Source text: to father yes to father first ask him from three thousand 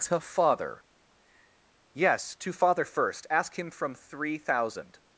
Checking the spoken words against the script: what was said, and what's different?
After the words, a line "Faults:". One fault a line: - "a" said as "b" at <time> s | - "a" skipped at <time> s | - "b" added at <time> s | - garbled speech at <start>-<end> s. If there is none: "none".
to father yes to father first ask him from three thousand
Faults:
none